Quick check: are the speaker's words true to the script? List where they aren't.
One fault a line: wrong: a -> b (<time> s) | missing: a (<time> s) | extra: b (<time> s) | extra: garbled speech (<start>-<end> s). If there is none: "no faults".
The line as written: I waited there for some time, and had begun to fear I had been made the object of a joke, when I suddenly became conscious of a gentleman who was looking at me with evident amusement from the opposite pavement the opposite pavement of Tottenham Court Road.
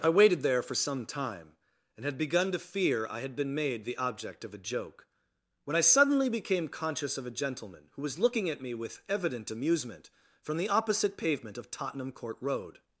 missing: the opposite pavement (11.6 s)